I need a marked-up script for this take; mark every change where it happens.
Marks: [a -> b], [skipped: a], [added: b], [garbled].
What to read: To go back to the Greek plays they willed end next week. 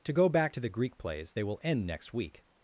To go back to the Greek plays they [willed -> will] end next week.